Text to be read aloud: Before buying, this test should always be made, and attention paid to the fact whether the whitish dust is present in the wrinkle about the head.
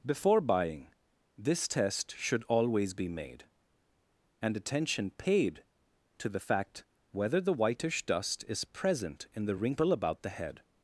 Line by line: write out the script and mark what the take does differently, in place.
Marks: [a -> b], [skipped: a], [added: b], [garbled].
Before buying, this test should always be made, and attention paid to the fact whether the whitish dust is present in the wrinkle about the head.